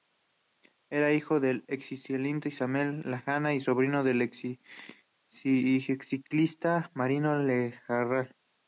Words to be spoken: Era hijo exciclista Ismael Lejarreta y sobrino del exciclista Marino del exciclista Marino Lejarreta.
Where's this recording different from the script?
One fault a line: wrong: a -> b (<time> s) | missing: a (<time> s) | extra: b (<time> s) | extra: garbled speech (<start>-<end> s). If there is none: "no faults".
extra: del (1.4 s)
missing: del exciclista Marino (7.4 s)